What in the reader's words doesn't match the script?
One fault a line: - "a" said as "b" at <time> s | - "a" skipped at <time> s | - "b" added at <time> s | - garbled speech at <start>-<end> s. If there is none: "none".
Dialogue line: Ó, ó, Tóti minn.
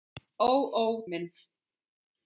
- "Tóti" skipped at 0.8 s